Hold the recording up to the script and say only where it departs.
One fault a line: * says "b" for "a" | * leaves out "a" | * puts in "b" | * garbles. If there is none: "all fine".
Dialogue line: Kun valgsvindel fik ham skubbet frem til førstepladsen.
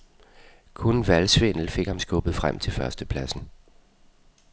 all fine